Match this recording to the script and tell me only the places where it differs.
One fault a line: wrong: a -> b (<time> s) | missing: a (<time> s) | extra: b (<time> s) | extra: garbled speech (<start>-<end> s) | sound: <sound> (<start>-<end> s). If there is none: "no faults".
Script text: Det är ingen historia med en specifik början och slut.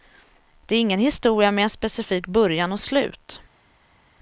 no faults